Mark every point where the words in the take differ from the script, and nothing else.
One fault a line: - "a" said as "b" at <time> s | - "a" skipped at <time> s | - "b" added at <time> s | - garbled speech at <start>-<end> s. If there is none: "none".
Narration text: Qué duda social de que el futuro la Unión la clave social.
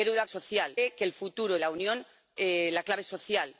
none